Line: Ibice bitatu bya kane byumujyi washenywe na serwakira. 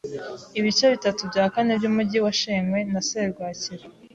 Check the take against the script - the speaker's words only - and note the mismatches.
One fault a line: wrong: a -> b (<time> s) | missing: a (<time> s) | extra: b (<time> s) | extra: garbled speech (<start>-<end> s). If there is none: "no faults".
no faults